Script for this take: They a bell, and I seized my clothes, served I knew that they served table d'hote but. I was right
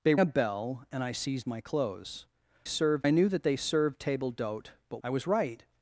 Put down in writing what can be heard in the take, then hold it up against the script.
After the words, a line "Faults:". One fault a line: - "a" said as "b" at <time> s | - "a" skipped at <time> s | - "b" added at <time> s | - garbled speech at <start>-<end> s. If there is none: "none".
They a bell, and I seized my clothes, served I knew that they served table d'hote but. I was right
Faults:
none